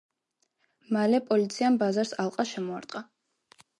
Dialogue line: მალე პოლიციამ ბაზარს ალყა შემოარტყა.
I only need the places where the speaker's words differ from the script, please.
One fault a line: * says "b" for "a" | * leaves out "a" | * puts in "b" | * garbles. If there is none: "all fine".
all fine